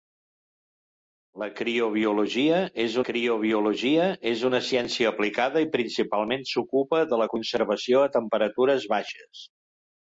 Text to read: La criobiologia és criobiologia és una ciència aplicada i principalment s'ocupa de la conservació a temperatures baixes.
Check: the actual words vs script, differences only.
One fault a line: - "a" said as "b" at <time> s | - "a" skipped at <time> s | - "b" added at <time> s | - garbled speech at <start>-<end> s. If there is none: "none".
none